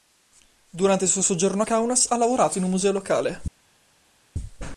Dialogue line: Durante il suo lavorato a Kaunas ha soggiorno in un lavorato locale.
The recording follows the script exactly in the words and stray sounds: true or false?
false